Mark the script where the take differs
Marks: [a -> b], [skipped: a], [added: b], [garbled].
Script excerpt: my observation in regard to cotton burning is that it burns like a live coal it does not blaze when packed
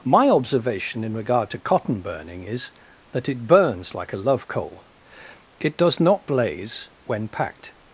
my observation in regard to cotton burning is that it burns like a [live -> love] coal it does not blaze when packed